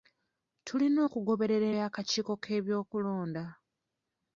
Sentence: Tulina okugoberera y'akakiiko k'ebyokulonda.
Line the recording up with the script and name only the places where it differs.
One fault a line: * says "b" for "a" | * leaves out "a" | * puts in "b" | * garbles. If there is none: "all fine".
all fine